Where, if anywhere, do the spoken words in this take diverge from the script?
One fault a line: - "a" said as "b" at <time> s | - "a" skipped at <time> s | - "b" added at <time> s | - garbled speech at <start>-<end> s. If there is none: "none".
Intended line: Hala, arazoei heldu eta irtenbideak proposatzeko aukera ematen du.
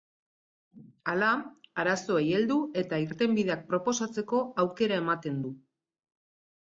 none